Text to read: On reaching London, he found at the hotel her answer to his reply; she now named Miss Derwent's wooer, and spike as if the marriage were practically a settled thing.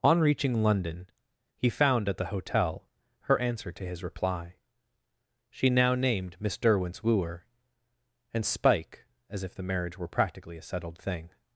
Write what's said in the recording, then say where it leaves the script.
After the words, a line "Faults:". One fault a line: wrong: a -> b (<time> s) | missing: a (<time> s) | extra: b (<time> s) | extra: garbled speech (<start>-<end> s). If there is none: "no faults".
On reaching London, he found at the hotel her answer to his reply; she now named Miss Derwent's wooer, and spike as if the marriage were practically a settled thing.
Faults:
no faults